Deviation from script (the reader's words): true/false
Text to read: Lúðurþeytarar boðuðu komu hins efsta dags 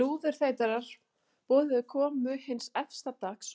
false